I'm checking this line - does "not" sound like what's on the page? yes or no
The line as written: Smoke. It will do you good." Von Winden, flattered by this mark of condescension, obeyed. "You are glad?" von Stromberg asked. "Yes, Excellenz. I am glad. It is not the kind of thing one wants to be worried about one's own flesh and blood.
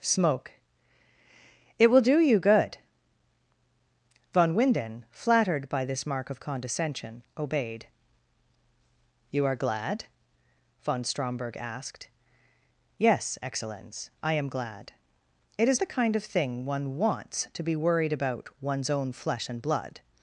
no